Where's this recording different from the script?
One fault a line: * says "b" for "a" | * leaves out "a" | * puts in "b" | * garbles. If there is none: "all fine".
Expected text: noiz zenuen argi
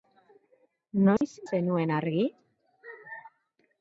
all fine